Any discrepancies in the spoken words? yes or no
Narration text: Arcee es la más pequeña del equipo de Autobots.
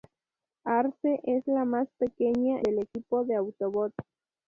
no